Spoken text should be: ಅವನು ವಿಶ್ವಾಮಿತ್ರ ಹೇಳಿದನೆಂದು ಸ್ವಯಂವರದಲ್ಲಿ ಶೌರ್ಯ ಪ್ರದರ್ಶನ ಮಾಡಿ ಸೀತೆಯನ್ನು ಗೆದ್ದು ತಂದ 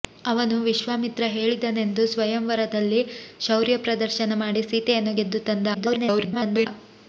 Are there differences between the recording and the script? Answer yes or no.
yes